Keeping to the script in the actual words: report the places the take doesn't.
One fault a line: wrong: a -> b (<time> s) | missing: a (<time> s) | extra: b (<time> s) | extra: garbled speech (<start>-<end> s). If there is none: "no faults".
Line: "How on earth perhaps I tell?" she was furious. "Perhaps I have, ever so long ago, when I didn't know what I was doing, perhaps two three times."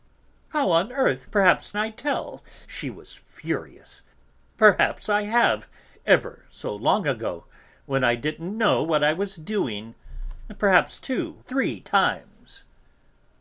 no faults